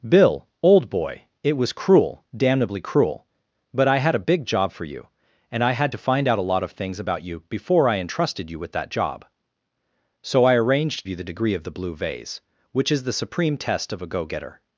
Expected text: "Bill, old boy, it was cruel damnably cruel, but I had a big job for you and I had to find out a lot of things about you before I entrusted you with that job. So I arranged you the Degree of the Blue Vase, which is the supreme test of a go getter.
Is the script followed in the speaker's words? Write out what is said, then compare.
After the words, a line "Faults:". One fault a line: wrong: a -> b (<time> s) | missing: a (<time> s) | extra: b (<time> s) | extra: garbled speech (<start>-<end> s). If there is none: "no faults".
"Bill, old boy, it was cruel damnably cruel, but I had a big job for you and I had to find out a lot of things about you before I entrusted you with that job. So I arranged you the Degree of the Blue Vase, which is the supreme test of a go getter.
Faults:
no faults